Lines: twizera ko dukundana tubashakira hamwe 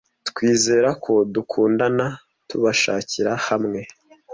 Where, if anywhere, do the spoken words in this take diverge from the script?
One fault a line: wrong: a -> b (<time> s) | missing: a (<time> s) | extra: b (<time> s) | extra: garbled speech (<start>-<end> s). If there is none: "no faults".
no faults